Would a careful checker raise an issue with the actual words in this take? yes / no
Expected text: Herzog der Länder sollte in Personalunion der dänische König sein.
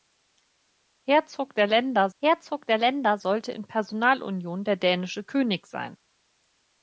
yes